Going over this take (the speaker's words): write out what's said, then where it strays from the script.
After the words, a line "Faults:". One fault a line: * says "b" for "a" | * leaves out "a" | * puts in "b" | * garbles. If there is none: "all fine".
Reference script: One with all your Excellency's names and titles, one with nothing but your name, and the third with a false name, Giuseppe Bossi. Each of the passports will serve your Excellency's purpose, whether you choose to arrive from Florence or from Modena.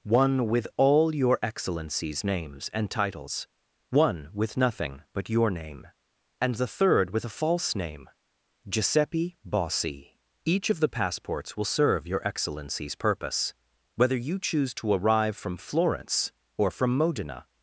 One with all your Excellency's names and titles, one with nothing but your name, and the third with a false name, Giuseppe Bossi. Each of the passports will serve your Excellency's purpose, whether you choose to arrive from Florence or from Modena.
Faults:
all fine